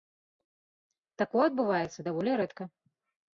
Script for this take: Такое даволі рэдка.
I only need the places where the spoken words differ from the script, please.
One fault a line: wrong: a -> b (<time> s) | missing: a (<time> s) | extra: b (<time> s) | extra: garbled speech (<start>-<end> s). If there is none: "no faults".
extra: адбываецца (1.5 s)